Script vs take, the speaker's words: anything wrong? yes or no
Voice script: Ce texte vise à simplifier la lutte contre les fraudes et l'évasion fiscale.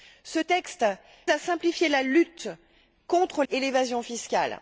yes